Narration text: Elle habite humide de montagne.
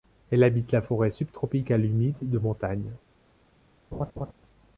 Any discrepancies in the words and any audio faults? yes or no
yes